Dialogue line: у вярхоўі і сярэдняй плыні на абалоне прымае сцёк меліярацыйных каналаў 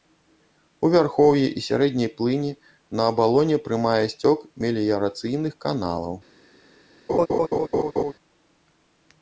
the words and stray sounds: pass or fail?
fail